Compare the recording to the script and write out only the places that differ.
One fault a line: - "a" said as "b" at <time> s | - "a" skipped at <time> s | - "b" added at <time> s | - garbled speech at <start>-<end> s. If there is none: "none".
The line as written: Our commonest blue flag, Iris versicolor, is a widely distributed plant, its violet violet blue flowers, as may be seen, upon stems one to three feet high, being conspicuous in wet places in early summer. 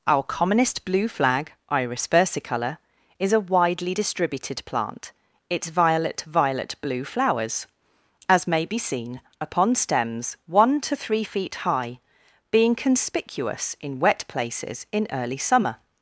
none